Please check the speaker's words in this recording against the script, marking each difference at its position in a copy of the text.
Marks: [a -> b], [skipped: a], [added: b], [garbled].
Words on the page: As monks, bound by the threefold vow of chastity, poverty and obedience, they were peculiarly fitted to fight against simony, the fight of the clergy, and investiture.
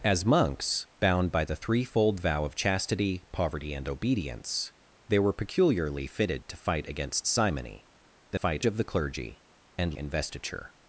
As monks, bound by the threefold vow of chastity, poverty and obedience, they were peculiarly fitted to fight against simony, the fight of the clergy, and investiture.